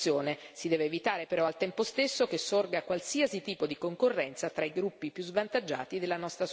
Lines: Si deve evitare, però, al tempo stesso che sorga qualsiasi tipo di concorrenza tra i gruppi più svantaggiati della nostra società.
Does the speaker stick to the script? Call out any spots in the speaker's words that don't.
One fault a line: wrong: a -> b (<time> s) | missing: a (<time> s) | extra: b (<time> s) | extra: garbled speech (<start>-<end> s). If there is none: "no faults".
no faults